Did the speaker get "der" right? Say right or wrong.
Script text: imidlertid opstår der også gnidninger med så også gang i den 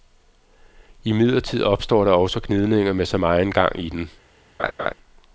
right